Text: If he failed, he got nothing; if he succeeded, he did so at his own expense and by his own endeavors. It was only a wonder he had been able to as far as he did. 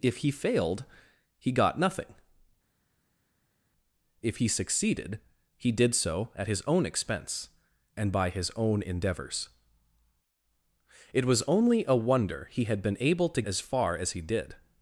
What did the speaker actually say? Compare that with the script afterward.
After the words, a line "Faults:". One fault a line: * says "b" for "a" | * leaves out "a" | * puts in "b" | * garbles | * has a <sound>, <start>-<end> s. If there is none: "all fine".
If he failed, he got nothing; if he succeeded, he did so at his own expense and by his own endeavors. It was only a wonder he had been able to as far as he did.
Faults:
all fine